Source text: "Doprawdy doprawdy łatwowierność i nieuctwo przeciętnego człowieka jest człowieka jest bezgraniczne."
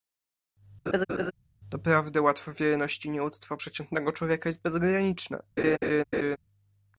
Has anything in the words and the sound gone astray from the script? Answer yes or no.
yes